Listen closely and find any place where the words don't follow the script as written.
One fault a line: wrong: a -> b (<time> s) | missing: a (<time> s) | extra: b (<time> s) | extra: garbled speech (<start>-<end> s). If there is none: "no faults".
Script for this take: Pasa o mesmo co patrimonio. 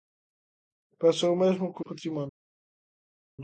no faults